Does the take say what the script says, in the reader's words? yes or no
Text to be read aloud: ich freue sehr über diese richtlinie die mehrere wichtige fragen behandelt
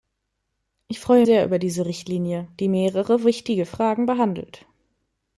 yes